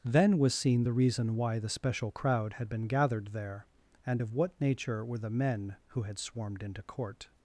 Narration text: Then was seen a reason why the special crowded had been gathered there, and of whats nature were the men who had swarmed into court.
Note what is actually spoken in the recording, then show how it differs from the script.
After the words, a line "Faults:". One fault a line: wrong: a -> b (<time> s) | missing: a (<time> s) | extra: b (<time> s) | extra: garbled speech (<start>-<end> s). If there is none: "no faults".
Then was seen the reason why the special crowd had been gathered there, and of what nature were the men who had swarmed into court.
Faults:
wrong: a -> the (0.8 s)
wrong: crowded -> crowd (2.1 s)
wrong: whats -> what (4.3 s)